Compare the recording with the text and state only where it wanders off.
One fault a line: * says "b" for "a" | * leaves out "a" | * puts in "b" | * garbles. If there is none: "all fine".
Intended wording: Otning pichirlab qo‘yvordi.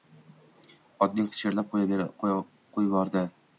all fine